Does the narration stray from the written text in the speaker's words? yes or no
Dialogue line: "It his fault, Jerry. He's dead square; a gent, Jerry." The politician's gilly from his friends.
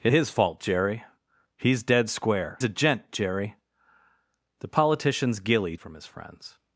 no